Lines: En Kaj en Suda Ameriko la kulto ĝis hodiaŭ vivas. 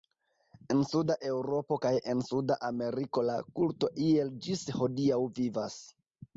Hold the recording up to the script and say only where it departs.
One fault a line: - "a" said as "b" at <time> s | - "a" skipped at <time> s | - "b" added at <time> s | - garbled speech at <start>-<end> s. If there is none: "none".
- "Suda Eŭropo" added at 0.9 s
- "iel" added at 4.1 s